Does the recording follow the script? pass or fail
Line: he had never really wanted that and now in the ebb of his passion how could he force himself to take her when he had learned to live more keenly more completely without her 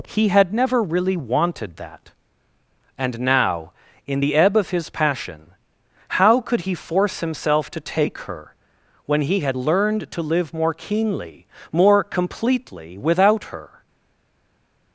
pass